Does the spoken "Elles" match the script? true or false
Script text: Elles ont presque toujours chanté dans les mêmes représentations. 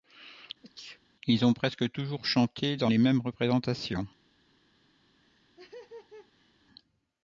false